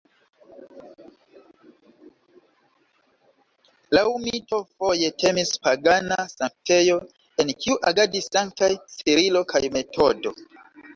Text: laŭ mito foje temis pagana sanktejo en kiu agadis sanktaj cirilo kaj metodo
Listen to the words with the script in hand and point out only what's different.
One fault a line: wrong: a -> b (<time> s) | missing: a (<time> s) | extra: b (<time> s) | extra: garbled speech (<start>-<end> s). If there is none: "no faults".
no faults